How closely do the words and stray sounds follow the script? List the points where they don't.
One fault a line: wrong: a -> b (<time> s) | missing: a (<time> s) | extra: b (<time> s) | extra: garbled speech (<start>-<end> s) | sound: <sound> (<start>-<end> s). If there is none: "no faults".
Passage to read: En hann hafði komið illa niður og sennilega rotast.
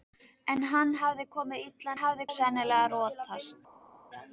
wrong: niður -> hafði (2.0 s)